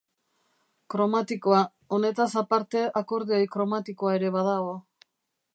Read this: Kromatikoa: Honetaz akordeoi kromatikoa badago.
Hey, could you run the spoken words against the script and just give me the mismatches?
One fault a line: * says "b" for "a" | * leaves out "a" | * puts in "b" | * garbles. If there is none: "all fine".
* puts in "aparte"
* puts in "ere"